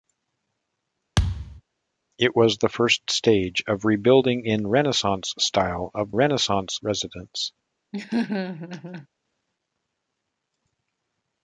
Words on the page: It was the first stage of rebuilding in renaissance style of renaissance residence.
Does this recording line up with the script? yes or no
yes